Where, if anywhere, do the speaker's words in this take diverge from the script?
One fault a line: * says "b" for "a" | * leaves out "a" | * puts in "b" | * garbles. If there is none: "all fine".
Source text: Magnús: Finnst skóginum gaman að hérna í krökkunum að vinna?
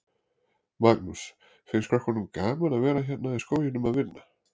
* says "krökkunum" for "skóginum"
* puts in "vera"
* says "skóginum" for "krökkunum"